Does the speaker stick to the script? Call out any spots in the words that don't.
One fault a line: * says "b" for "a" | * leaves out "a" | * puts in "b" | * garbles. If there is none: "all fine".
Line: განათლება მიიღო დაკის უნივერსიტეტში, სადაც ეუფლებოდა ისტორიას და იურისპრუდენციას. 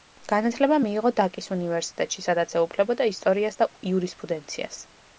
all fine